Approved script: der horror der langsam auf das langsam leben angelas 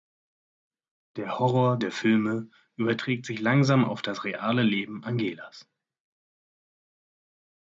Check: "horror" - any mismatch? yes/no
no